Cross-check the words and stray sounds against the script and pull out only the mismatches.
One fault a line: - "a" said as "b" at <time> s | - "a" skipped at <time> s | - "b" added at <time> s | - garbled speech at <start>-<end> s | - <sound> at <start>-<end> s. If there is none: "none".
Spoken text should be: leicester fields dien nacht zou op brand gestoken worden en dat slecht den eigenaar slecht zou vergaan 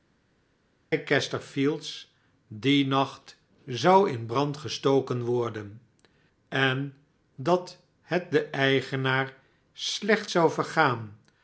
- "op" said as "in" at 4.1 s
- "slecht" said as "het" at 8.0 s